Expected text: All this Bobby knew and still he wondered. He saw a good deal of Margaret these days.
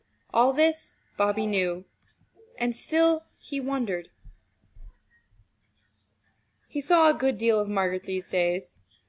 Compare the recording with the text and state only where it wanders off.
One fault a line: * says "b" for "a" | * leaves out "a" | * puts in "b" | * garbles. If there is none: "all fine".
all fine